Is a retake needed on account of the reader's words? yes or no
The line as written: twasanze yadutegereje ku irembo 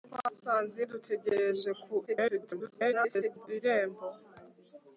yes